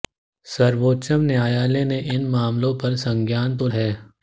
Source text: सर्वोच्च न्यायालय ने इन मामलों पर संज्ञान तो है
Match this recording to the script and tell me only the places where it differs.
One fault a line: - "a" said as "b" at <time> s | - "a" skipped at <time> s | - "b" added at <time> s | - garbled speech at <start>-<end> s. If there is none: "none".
none